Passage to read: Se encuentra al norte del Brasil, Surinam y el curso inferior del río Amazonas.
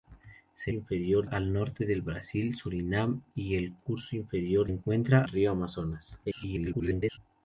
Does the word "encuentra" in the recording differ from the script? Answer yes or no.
yes